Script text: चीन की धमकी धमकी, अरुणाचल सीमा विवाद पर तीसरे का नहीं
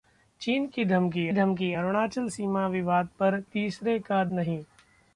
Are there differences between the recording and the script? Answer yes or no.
no